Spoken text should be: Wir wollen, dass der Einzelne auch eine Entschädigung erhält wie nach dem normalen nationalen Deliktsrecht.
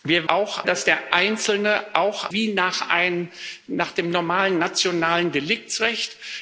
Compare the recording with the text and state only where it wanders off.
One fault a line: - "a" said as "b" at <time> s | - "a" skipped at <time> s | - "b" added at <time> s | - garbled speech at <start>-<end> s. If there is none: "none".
- "wollen" said as "auch" at 0.3 s
- "eine Entschädigung erhält" skipped at 2.3 s